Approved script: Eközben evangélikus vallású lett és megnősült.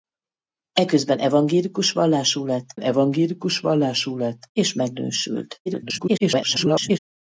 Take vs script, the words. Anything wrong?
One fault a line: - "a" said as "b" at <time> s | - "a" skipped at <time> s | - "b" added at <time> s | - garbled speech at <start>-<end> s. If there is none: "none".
- "evangélikus vallású lett" added at 2.8 s
- garbled speech at 5.7-7.0 s